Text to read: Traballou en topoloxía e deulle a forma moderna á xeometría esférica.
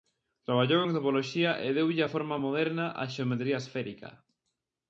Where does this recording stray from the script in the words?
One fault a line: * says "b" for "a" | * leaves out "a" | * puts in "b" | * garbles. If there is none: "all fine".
all fine